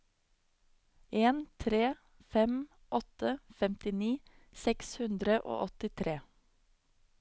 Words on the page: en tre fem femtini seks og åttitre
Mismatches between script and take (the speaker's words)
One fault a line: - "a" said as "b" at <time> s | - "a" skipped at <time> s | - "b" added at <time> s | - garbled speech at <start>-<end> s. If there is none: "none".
- "åtte" added at 3.0 s
- "hundre" added at 5.0 s